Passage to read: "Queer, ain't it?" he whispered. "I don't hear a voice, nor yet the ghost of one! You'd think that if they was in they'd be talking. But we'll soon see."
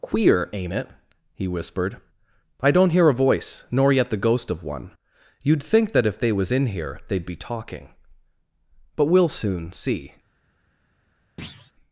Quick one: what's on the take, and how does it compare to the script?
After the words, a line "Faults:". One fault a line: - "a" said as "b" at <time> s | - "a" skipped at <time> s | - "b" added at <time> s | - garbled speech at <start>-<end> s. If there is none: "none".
"Queer, ain't it?" he whispered. "I don't hear a voice, nor yet the ghost of one! You'd think that if they was in here they'd be talking. But we'll soon see."
Faults:
- "here" added at 6.7 s